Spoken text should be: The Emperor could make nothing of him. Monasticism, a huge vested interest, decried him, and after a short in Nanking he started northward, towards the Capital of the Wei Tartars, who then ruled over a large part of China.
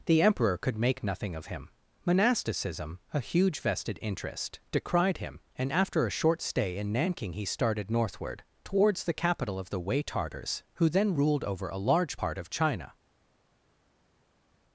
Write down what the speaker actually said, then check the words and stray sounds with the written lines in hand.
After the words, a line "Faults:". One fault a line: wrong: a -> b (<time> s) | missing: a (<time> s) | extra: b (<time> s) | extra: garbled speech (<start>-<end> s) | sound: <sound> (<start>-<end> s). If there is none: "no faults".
The Emperor could make nothing of him. Monasticism, a huge vested interest, decried him, and after a short stay in Nanking he started northward, towards the Capital of the Wei Tartars, who then ruled over a large part of China.
Faults:
extra: stay (6.4 s)